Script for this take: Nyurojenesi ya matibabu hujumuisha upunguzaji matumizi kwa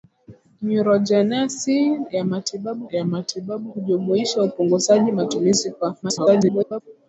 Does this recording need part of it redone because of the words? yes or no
yes